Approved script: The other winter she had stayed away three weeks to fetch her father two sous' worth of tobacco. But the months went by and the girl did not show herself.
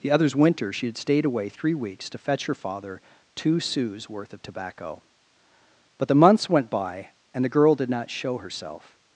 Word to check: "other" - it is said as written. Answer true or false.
false